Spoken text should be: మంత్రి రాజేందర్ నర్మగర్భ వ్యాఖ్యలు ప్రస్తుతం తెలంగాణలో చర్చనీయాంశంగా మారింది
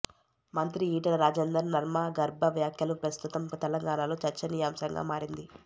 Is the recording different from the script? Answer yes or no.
yes